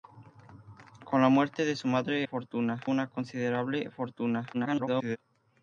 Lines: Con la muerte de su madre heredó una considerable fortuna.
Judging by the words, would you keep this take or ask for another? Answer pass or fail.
fail